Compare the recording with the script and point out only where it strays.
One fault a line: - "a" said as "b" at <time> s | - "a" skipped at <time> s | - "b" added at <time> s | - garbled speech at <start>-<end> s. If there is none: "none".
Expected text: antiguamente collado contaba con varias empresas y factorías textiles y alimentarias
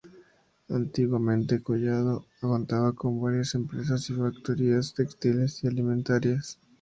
none